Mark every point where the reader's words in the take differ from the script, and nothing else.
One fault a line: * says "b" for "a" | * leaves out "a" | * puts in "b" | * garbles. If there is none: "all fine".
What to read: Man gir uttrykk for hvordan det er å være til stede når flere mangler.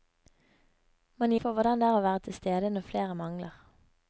* leaves out "gir uttrykk"